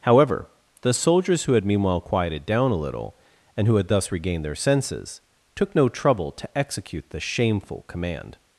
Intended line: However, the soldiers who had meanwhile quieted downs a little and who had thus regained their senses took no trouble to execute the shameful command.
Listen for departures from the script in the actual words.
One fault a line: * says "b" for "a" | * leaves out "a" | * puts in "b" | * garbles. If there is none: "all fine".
* says "down" for "downs"